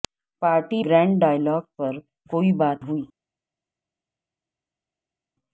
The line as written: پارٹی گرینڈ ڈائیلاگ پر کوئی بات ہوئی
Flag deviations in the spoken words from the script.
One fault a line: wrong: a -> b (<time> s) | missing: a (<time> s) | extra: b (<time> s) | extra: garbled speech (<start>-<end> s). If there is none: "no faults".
no faults